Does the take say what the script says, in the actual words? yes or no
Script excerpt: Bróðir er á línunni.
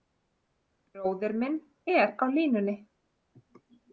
no